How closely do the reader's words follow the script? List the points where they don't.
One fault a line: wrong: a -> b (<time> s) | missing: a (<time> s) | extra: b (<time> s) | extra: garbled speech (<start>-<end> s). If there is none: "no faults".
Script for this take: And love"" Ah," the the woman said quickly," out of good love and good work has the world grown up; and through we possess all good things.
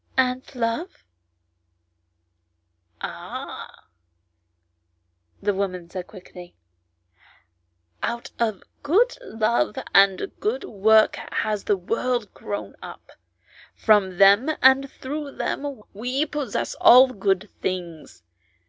missing: the (5.5 s)
extra: from them (13.7 s)
extra: them (15.3 s)